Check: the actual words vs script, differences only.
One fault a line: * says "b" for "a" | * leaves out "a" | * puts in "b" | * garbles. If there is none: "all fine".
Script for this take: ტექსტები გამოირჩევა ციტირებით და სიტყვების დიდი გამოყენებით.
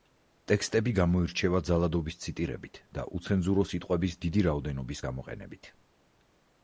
* puts in "ძალადობის"
* puts in "უცენზურო"
* puts in "რაოდენობის"